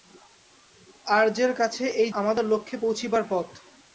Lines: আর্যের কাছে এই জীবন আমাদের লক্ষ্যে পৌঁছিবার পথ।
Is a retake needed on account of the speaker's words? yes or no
yes